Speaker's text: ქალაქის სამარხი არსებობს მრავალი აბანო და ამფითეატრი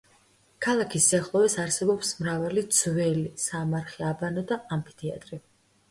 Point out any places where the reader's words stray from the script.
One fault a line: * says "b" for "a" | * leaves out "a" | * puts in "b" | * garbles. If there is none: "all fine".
* says "სიახლოვეს" for "სამარხი"
* puts in "ძველი სამარხი"